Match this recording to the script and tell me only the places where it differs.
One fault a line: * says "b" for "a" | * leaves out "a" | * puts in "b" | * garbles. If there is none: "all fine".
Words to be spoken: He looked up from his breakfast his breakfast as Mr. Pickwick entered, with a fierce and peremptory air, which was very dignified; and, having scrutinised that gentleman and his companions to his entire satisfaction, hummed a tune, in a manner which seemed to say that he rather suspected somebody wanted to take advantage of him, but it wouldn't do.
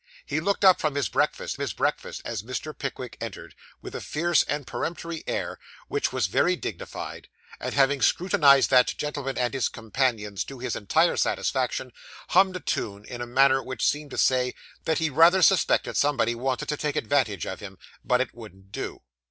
all fine